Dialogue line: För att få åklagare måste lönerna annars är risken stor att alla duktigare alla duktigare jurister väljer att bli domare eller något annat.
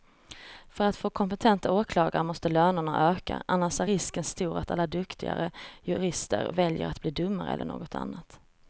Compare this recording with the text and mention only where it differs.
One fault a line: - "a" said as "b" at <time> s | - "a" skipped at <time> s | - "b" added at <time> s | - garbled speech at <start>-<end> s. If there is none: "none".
- "kompetenta" added at 1.1 s
- "öka" added at 3.1 s
- "alla duktigare" skipped at 5.5 s